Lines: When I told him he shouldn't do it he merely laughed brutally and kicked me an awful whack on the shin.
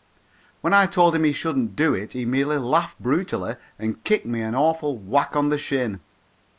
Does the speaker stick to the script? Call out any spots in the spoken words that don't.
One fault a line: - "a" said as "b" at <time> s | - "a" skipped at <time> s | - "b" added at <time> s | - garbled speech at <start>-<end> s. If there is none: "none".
none